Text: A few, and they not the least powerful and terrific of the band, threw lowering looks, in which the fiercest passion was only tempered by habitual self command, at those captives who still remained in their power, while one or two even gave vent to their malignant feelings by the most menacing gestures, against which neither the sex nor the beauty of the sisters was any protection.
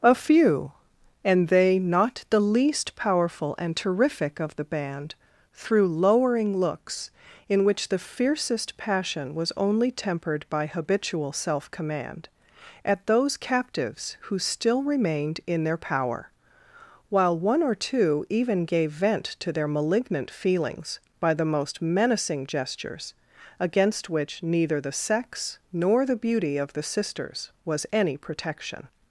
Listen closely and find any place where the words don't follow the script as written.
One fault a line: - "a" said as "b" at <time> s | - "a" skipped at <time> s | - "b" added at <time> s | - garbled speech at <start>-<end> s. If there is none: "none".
none